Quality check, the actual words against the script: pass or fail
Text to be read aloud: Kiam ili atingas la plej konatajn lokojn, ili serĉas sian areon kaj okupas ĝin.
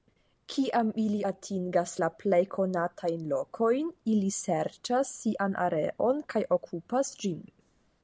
pass